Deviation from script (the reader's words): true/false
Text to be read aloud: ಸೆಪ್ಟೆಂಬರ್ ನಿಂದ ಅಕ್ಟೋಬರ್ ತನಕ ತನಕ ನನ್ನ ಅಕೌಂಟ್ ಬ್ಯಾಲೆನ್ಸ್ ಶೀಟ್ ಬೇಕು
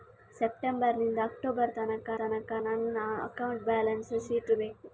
false